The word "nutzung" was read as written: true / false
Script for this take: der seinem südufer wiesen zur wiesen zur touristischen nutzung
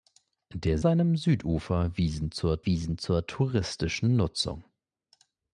true